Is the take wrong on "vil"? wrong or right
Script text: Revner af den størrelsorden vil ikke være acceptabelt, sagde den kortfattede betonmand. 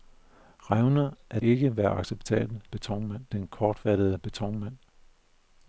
wrong